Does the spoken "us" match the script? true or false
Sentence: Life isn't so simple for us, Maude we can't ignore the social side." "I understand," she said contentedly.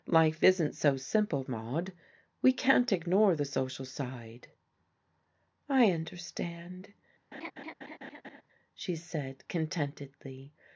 false